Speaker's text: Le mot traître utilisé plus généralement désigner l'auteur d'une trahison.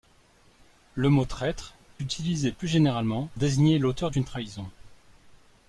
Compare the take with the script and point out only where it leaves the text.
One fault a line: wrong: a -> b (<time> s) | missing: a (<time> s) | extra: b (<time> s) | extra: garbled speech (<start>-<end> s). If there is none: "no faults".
no faults